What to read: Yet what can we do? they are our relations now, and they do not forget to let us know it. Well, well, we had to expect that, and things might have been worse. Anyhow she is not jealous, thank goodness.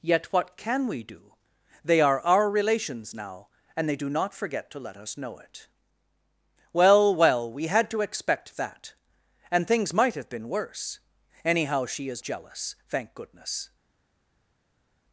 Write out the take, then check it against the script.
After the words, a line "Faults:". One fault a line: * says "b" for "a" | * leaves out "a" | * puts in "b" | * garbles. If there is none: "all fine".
Yet what can we do? they are our relations now, and they do not forget to let us know it. Well, well, we had to expect that, and things might have been worse. Anyhow she is jealous, thank goodness.
Faults:
* leaves out "not"